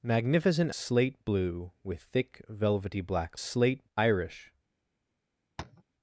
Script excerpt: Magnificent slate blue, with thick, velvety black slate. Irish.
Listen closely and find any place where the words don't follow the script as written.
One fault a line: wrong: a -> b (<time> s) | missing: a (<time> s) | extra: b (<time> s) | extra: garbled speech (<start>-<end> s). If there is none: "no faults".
no faults